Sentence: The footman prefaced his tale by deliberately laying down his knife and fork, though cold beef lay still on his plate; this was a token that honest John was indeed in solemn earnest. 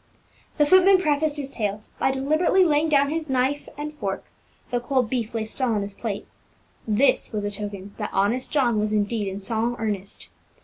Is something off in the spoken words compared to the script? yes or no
no